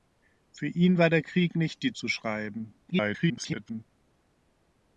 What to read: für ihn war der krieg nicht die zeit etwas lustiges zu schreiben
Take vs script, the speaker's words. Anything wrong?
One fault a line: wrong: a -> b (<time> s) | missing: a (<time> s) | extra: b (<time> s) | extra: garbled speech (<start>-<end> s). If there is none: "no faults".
missing: zeit etwas lustiges (1.9 s)
extra: garbled speech (2.9-3.8 s)